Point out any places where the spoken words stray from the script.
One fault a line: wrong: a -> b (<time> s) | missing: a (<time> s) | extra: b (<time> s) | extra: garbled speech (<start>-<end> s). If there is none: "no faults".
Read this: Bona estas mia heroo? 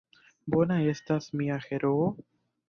no faults